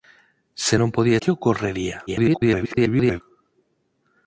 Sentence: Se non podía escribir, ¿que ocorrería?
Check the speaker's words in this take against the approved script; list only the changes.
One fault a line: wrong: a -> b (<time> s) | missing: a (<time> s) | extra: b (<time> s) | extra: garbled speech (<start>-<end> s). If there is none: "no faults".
missing: escribir (1.2 s)
extra: garbled speech (2.1-3.2 s)